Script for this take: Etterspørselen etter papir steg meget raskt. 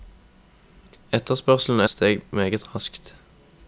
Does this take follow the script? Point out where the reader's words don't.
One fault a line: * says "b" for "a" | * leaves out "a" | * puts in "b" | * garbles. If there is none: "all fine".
* leaves out "etter papir"